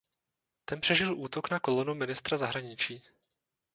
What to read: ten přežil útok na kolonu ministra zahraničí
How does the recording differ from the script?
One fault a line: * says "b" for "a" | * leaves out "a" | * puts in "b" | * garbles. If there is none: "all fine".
all fine